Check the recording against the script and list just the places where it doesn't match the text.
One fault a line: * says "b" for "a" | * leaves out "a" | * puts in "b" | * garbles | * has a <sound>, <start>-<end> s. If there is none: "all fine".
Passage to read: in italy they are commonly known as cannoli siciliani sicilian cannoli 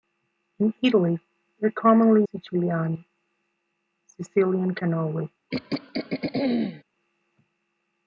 * leaves out "known as cannoli"
* has a throat clearing, 5.5-6.8 s